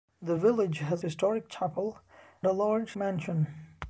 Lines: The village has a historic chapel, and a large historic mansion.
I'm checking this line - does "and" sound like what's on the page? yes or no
no